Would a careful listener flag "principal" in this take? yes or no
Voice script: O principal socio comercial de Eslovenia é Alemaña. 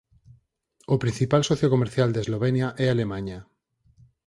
no